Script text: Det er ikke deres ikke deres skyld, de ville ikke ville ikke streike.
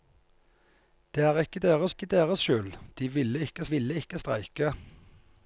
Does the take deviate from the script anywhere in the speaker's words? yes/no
no